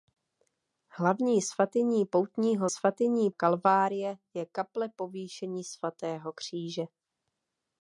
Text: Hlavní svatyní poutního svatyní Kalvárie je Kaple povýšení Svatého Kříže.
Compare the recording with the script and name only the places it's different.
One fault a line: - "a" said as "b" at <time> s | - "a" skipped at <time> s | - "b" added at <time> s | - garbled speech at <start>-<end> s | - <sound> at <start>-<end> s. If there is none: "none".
none